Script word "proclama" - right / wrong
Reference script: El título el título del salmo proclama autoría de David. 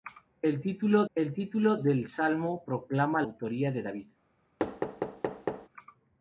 right